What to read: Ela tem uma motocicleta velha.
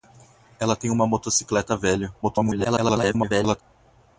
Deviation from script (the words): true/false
true